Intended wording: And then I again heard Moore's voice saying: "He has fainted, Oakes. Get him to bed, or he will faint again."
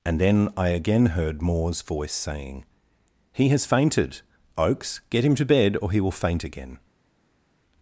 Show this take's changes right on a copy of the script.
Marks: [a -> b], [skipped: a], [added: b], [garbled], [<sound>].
And then I again heard Moore's voice saying: "He has fainted, Oakes. Get him to bed, or he will faint again."